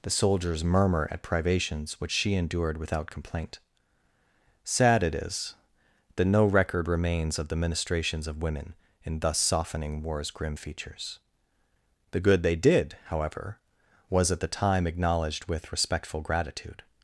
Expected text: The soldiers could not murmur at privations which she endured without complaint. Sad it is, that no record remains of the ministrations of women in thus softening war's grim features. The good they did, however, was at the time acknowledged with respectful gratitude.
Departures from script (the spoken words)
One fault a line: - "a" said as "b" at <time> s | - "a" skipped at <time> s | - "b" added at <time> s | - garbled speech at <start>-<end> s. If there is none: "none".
- "could not" skipped at 0.6 s